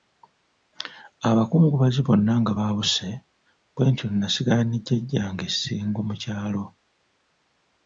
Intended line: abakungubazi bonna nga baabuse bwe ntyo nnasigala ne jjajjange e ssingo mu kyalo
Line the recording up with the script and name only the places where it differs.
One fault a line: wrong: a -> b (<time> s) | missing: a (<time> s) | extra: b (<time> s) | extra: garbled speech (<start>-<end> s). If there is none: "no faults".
no faults